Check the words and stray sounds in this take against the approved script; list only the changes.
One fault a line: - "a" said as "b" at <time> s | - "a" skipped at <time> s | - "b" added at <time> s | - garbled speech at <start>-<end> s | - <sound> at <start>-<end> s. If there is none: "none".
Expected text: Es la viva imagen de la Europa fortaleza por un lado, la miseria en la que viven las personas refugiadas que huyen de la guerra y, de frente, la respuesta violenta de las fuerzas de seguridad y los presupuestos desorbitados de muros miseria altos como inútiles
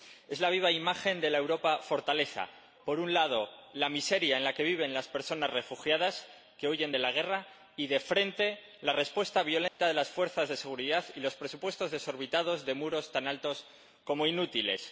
- dropout at 9.7-9.8 s
- "miseria" said as "tan" at 13.1 s